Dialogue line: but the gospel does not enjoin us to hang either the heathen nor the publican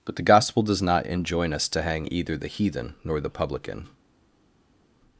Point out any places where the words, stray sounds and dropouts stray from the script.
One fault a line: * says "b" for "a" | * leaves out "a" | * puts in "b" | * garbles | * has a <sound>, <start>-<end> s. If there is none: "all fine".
all fine